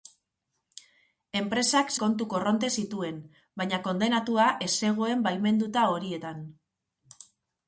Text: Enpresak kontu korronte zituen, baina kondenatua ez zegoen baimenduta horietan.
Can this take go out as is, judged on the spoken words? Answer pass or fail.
pass